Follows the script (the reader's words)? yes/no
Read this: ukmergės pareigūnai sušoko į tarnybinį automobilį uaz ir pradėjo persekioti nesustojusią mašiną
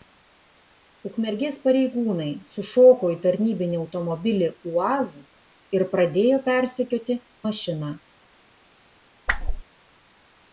no